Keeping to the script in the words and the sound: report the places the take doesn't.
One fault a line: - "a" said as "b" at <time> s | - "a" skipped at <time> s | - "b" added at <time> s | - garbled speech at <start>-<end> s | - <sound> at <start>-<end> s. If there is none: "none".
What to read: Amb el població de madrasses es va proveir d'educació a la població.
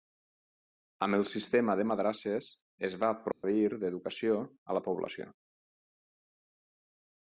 - "població" said as "sistema" at 1.3 s
- dropout at 3.3-3.4 s